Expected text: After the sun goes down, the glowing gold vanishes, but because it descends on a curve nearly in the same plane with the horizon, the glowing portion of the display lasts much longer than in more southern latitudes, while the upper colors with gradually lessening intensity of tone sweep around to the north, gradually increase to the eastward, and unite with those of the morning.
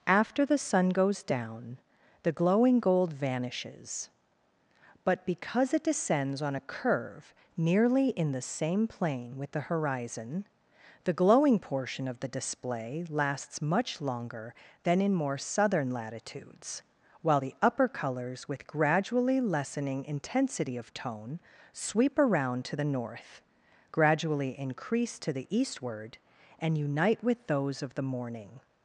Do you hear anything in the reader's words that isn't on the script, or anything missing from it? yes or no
no